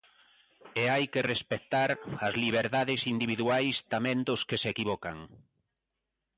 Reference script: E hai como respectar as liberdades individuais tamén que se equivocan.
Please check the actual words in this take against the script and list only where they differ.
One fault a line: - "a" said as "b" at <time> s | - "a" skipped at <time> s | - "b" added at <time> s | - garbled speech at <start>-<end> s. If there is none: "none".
- "como" said as "que" at 1.1 s
- "dos" added at 4.3 s